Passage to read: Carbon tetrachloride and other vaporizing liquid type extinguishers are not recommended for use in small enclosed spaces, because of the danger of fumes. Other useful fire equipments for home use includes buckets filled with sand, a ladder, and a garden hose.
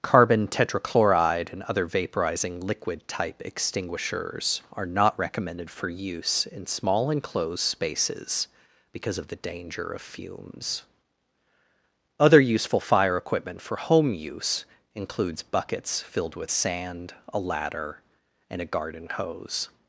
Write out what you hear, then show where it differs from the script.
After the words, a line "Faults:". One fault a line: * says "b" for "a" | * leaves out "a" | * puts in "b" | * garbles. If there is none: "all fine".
Carbon tetrachloride and other vaporizing liquid type extinguishers are not recommended for use in small enclosed spaces, because of the danger of fumes. Other useful fire equipment for home use includes buckets filled with sand, a ladder, and a garden hose.
Faults:
* says "equipment" for "equipments"